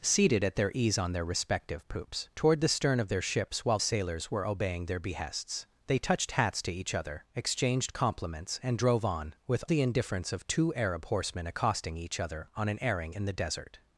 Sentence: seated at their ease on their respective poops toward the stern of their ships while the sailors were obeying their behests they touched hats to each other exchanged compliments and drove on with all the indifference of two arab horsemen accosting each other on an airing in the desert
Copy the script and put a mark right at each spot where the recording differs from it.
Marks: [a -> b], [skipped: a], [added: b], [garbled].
seated at their ease on their respective poops toward the stern of their ships while [skipped: the] sailors were obeying their behests they touched hats to each other exchanged compliments and drove on with [skipped: all] the indifference of two arab horsemen accosting each other on an airing in the desert